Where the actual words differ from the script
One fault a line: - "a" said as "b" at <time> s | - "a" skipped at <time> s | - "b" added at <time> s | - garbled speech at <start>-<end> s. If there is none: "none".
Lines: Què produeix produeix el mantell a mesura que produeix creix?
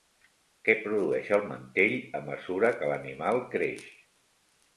- "produeix" skipped at 1.3 s
- "produeix" said as "l'animal" at 2.9 s